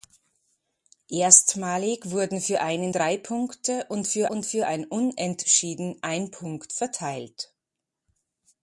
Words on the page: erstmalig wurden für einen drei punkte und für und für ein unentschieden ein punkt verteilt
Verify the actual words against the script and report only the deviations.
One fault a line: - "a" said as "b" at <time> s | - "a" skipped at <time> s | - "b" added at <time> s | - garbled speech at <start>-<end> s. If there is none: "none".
none